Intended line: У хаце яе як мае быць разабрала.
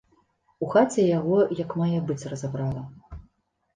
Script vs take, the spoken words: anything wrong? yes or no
yes